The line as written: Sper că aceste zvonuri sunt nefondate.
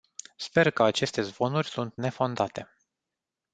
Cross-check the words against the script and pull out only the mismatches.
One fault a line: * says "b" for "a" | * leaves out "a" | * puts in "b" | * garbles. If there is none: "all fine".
all fine